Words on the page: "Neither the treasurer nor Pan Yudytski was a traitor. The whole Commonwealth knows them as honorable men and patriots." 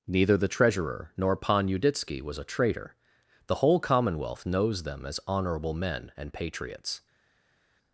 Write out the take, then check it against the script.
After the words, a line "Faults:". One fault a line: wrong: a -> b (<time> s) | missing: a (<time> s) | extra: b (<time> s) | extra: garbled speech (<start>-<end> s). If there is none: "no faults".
"Neither the treasurer nor Pan Yudytski was a traitor. The whole Commonwealth knows them as honorable men and patriots."
Faults:
no faults